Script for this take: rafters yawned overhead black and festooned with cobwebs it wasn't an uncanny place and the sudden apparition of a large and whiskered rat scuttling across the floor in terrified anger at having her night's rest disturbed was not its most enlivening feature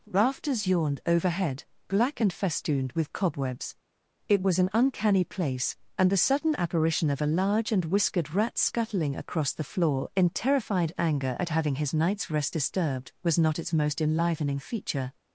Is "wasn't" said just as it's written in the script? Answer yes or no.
no